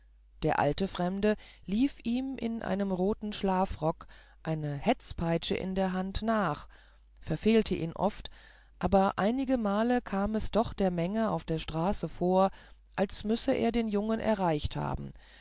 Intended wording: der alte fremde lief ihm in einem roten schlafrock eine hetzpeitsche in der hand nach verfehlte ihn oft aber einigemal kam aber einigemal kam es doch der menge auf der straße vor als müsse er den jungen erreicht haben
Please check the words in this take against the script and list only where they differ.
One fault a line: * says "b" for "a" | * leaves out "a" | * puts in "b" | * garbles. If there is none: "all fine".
* leaves out "aber einigemal kam"